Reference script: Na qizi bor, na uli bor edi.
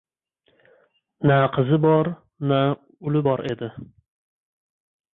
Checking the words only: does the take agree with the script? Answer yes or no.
yes